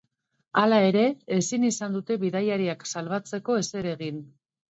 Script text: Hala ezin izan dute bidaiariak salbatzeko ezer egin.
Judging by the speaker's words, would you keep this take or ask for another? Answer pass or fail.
fail